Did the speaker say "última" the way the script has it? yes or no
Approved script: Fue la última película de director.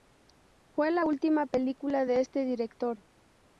yes